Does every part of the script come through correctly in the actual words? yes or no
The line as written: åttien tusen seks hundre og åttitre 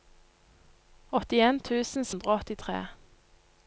no